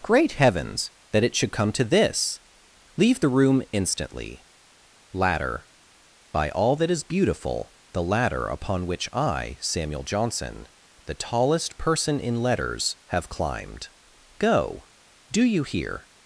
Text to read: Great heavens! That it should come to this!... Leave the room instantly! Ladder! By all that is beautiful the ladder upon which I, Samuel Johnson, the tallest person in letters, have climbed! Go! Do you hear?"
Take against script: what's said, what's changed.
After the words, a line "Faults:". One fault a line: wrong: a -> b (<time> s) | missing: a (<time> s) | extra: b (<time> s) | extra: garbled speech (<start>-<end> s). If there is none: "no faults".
Great heavens! That it should come to this!... Leave the room instantly! Ladder! By all that is beautiful the ladder upon which I, Samuel Johnson, the tallest person in letters, have climbed! Go! Do you hear?"
Faults:
no faults